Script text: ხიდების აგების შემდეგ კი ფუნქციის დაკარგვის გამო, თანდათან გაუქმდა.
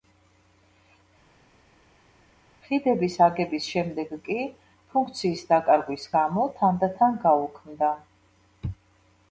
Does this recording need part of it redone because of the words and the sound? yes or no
no